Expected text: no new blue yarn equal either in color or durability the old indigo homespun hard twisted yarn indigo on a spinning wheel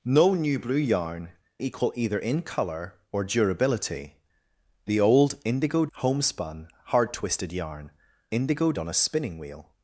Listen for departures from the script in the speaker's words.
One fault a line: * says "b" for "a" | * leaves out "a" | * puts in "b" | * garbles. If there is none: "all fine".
all fine